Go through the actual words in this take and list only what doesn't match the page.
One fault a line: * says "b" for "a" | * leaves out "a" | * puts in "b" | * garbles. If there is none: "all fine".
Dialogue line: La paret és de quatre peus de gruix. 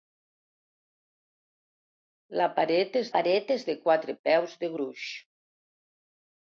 * puts in "paret és"